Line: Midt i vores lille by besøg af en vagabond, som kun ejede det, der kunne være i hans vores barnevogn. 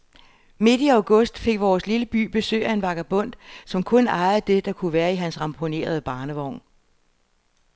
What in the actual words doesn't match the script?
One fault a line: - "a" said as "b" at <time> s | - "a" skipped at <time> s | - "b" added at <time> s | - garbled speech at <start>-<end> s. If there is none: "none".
- "august fik" added at 0.9 s
- "vores" said as "ramponerede" at 5.4 s